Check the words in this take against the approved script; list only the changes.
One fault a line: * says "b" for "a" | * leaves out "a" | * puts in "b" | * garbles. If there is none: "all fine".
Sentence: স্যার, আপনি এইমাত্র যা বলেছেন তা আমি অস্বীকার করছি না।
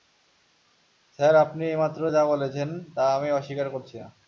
all fine